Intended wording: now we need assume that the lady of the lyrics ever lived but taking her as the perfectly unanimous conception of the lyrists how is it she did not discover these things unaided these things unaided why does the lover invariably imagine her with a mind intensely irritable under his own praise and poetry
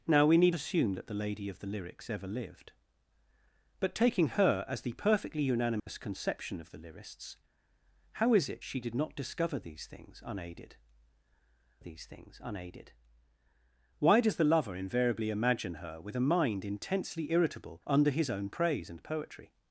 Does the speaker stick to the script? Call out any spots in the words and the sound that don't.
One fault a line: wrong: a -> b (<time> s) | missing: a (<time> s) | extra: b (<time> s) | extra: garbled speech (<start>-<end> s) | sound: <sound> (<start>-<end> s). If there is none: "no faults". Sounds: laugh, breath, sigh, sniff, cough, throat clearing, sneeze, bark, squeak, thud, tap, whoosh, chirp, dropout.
sound: dropout (5.8-5.9 s)